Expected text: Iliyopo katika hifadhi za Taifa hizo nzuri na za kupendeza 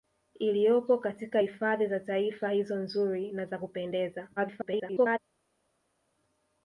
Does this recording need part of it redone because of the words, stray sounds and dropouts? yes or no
yes